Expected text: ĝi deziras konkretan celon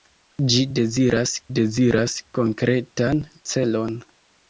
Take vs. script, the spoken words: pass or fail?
fail